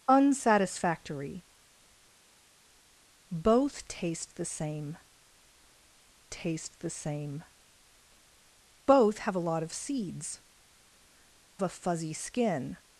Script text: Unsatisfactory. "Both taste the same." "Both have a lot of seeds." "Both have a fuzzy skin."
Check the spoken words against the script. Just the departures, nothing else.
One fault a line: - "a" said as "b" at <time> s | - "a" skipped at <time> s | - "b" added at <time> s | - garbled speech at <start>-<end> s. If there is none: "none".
- "taste the same" added at 6.3 s
- "Both have" skipped at 10.4 s